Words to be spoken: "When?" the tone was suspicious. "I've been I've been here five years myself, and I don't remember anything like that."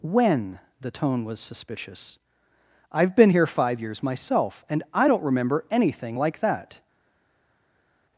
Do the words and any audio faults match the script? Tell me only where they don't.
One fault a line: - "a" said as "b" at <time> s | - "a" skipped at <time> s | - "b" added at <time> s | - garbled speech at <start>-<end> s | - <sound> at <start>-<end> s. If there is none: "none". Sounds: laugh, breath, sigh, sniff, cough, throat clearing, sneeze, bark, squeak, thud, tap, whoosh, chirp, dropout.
- "I've been" skipped at 3.3 s